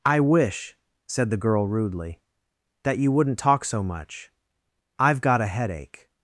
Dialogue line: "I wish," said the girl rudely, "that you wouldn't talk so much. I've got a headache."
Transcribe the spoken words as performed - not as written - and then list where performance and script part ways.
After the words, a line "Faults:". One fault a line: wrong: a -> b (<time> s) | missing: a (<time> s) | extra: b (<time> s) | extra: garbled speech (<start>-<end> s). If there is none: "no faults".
"I wish," said the girl rudely, "that you wouldn't talk so much. I've got a headache."
Faults:
no faults